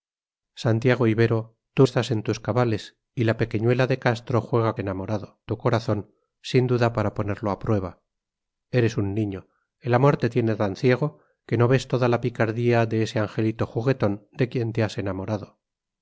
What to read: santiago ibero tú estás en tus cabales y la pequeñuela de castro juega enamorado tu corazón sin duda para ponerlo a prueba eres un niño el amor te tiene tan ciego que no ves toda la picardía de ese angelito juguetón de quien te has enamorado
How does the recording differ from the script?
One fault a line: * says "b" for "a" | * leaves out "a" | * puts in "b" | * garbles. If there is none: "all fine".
all fine